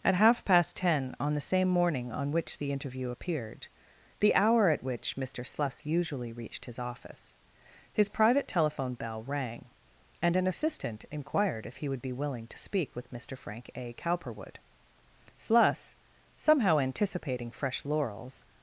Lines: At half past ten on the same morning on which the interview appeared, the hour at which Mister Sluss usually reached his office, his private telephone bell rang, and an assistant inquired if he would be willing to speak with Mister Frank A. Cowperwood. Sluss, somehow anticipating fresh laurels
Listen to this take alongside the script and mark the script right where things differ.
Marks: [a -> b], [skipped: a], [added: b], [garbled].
At half past ten on the same morning on which the interview appeared, the hour at which Mister Sluss usually reached his office, his private telephone bell rang, and an assistant inquired if he would be willing to speak with Mister Frank A. Cowperwood. Sluss, somehow anticipating fresh laurels